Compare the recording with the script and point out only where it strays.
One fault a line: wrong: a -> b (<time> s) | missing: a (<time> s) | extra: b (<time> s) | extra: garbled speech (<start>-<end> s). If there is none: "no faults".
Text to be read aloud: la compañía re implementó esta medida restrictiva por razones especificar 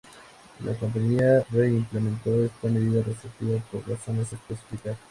no faults